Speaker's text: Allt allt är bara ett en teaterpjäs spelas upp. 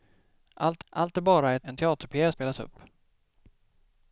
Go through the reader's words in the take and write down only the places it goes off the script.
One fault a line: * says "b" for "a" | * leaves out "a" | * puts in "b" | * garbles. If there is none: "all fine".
all fine